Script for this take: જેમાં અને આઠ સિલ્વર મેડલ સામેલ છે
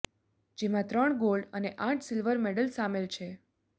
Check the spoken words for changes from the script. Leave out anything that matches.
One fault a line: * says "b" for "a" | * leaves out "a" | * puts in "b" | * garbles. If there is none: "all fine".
* puts in "ત્રણ ગોલ્ડ"